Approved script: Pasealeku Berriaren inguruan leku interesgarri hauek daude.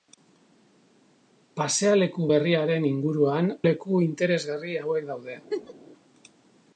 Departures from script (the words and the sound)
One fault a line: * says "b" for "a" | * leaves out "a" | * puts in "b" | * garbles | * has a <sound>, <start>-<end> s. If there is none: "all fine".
* has a laugh, 5.5-5.7 s